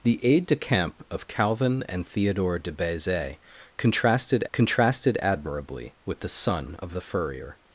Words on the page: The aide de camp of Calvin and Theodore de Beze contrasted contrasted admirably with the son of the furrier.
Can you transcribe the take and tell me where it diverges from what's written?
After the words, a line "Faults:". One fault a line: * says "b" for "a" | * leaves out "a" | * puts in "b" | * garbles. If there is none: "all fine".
The aide de camp of Calvin and Theodore de Beze contrasted contrasted admirably with the son of the furrier.
Faults:
all fine